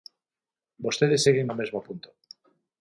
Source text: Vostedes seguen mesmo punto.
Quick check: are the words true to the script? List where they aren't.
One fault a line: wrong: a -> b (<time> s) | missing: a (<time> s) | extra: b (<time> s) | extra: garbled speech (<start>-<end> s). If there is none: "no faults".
extra: no (1.5 s)